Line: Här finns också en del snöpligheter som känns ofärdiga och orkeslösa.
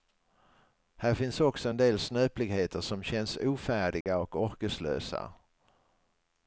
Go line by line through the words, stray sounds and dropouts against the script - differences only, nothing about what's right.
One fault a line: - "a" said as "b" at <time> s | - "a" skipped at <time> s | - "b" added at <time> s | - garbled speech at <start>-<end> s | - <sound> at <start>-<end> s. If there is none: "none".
- dropout at 4.0-4.1 s